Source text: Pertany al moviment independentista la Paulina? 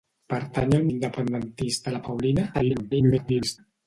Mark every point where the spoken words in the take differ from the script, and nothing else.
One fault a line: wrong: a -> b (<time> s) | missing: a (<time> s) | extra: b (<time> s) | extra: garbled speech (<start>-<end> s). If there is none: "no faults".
missing: moviment (0.9 s)
extra: garbled speech (2.5-3.6 s)